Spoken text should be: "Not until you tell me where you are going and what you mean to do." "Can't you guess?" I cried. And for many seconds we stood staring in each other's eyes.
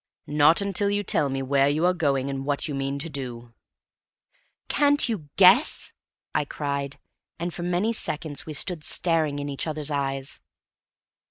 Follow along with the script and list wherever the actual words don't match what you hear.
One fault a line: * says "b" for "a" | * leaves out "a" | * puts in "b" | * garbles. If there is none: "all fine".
all fine